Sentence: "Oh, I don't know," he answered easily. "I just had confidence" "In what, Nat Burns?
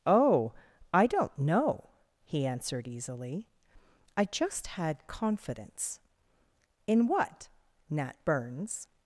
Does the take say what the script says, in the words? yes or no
yes